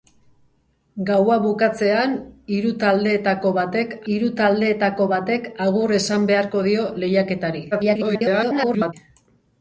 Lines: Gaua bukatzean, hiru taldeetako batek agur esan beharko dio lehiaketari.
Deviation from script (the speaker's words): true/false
true